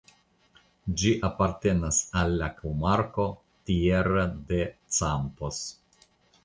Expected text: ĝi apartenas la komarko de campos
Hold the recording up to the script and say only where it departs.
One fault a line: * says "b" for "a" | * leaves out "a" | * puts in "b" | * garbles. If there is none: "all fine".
* puts in "al"
* puts in "tierra"